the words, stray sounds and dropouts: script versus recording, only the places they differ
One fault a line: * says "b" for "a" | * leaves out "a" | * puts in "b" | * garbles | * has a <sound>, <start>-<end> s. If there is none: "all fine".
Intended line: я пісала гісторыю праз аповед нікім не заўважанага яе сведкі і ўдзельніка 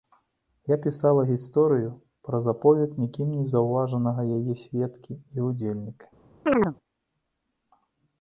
* has a chirp, 6.5-6.8 s